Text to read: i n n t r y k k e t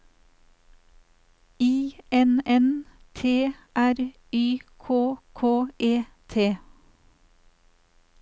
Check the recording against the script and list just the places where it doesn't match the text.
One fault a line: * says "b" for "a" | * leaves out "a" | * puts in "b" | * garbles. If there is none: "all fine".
all fine